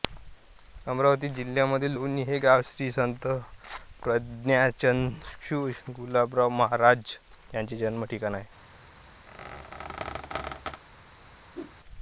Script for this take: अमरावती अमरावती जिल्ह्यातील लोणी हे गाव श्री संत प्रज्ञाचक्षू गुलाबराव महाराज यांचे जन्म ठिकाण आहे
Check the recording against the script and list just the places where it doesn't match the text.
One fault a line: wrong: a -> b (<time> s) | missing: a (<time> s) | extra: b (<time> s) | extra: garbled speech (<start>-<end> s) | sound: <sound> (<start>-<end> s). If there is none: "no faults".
missing: अमरावती (1.3 s)
sound: squeak (9.3-10.8 s)
sound: whoosh (11.5-11.8 s)